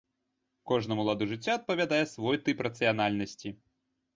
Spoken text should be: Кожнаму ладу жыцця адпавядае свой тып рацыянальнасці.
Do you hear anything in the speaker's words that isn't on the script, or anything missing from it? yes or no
no